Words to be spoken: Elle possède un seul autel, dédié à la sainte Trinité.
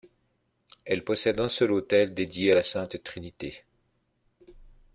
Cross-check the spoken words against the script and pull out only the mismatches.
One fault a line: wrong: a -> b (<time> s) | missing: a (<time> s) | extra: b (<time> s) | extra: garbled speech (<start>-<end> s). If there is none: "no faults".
no faults